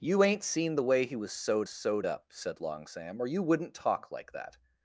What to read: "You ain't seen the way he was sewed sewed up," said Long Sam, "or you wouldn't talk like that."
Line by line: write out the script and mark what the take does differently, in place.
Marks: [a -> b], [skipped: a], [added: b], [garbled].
"You ain't seen the way he was sewed sewed up," said Long Sam, "or you wouldn't talk like that."